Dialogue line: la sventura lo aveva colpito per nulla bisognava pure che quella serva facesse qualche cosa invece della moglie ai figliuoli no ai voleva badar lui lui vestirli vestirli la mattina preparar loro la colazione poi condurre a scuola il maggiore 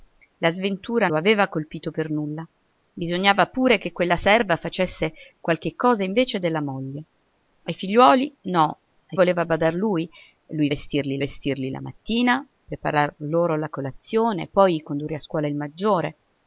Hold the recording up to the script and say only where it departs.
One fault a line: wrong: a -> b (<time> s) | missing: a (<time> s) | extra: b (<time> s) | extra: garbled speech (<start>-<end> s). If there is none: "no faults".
no faults